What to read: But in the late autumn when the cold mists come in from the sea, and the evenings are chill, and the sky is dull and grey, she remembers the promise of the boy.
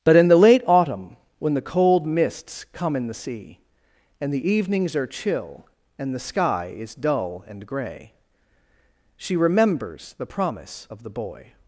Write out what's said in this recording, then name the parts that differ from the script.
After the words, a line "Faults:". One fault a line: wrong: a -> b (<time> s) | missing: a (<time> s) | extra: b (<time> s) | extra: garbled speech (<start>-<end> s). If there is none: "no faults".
But in the late autumn when the cold mists come in the sea, and the evenings are chill, and the sky is dull and grey, she remembers the promise of the boy.
Faults:
missing: from (3.1 s)